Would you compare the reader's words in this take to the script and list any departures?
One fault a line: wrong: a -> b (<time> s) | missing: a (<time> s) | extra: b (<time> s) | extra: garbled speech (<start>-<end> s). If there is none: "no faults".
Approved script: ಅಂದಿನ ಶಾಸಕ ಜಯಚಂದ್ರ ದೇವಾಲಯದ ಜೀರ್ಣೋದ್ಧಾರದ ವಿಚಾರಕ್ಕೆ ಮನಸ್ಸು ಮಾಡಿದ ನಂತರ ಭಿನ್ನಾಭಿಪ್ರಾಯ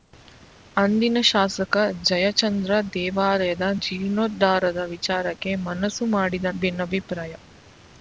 missing: ನಂತರ (6.5 s)